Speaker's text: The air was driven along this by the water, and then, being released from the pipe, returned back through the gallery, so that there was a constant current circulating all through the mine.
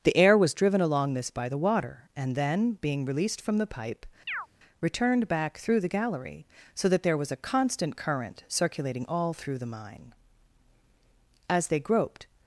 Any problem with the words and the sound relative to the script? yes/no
yes